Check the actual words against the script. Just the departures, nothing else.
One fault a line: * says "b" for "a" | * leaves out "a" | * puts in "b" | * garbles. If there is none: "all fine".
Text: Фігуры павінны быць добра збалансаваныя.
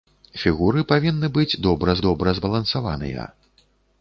* puts in "добра"